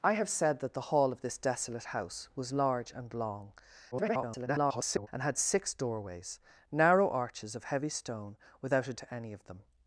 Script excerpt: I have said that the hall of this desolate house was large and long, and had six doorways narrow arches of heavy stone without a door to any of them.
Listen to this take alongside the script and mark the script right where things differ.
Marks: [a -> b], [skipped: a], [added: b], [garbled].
I have said that the hall of this desolate house was large and long, [garbled] and had six doorways narrow arches of heavy stone without a [skipped: door] to any of them.